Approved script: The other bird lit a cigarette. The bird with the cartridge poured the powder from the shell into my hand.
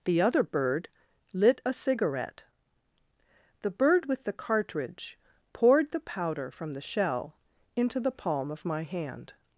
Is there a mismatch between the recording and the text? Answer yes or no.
yes